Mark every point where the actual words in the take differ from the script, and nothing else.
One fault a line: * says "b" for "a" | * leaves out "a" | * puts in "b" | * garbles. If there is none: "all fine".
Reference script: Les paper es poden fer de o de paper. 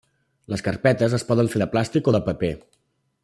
* says "carpetes" for "paper"
* puts in "plàstic"